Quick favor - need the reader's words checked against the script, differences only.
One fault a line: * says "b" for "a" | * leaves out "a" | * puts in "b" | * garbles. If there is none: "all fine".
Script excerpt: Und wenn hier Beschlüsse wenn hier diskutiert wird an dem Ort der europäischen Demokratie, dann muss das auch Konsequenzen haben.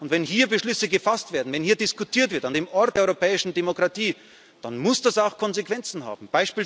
* puts in "gefasst werden"